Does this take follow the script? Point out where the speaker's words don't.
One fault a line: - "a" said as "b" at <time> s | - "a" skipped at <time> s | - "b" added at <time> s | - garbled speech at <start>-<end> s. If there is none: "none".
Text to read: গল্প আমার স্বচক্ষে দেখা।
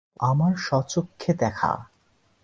none